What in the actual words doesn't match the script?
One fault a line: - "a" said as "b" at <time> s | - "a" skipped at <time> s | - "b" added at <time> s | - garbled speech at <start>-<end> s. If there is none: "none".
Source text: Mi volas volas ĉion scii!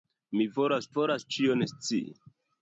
none